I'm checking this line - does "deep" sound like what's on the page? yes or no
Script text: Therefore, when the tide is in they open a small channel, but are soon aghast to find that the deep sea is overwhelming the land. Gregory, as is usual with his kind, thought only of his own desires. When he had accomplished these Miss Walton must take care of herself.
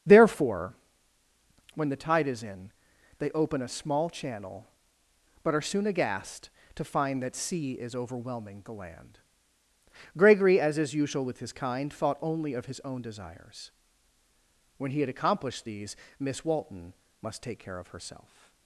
no